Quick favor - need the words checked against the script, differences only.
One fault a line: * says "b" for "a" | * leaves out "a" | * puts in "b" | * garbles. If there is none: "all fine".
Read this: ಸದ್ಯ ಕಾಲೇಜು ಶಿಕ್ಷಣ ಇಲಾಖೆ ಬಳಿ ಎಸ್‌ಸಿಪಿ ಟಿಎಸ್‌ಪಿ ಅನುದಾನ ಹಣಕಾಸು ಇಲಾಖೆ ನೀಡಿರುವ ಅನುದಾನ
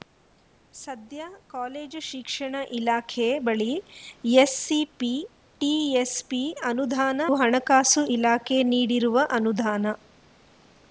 all fine